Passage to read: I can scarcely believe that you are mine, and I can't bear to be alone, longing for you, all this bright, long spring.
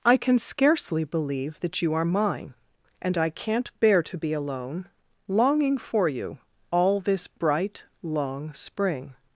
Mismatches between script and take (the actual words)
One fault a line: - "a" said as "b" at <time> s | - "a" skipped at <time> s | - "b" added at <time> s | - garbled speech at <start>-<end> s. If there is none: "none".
none